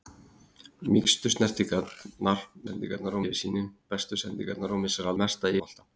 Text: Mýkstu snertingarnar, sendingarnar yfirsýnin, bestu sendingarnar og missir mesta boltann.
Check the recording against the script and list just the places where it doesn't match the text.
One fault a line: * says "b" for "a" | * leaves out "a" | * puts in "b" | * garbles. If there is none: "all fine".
all fine